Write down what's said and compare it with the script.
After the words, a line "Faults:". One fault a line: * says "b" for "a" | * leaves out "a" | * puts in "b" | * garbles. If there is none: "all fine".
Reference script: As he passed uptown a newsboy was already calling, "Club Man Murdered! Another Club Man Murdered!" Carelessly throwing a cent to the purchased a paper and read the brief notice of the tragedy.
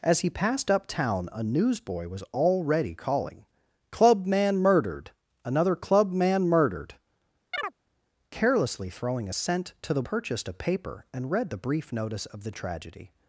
As he passed uptown a newsboy was already calling, "Club Man Murdered! Another Club Man Murdered!" Carelessly throwing a cent to the purchased a paper and read the brief notice of the tragedy.
Faults:
all fine